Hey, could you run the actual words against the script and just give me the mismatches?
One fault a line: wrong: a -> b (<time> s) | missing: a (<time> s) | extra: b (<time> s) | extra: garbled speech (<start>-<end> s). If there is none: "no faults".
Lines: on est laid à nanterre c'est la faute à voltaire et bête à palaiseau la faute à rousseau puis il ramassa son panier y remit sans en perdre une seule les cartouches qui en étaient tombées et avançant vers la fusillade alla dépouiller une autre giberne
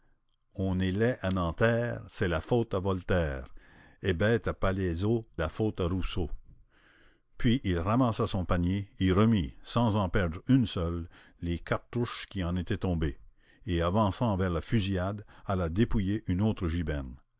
no faults